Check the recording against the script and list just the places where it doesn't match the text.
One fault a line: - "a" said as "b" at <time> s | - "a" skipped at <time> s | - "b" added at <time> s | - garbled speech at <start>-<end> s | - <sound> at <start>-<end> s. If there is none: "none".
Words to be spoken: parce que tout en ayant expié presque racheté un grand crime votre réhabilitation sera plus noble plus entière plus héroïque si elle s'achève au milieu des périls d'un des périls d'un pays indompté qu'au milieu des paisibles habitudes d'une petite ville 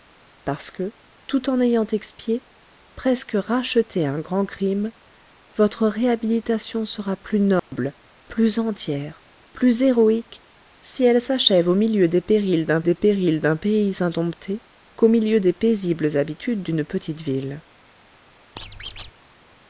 - dropout at 7.6-7.7 s
- squeak at 18.6-19.1 s